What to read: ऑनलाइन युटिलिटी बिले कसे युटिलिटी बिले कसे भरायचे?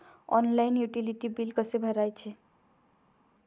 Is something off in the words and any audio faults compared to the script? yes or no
yes